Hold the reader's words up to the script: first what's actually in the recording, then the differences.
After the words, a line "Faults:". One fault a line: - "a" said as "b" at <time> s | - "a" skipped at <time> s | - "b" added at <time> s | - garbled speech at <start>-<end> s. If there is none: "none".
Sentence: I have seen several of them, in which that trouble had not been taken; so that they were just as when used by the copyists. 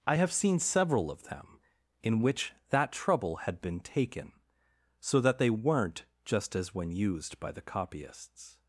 I have seen several of them, in which that trouble had been taken; so that they weren't just as when used by the copyists.
Faults:
- "not" skipped at 3.6 s
- "were" said as "weren't" at 5.5 s